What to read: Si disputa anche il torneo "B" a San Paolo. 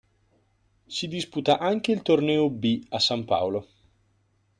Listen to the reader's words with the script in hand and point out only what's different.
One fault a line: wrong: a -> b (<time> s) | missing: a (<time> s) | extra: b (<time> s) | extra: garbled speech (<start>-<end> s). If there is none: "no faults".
no faults